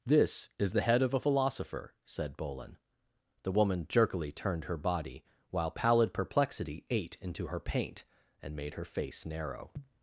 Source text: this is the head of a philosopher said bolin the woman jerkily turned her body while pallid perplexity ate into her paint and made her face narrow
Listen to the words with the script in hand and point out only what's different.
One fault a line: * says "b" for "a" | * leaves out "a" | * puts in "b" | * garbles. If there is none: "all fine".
all fine